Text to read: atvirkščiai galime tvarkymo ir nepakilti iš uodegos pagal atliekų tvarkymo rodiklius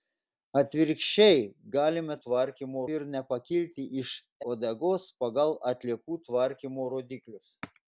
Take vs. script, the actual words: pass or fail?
pass